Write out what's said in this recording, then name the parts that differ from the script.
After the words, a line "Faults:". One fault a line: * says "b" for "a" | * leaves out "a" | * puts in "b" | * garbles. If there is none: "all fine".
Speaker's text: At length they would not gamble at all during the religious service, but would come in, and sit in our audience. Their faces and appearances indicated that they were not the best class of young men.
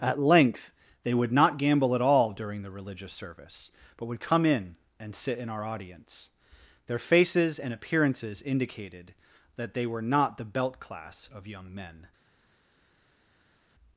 At length they would not gamble at all during the religious service, but would come in, and sit in our audience. Their faces and appearances indicated that they were not the belt class of young men.
Faults:
* says "belt" for "best"